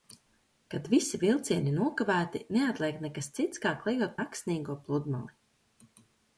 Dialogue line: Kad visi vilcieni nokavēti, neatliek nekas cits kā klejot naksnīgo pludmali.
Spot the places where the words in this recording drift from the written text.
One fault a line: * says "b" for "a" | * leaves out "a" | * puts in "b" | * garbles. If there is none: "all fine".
all fine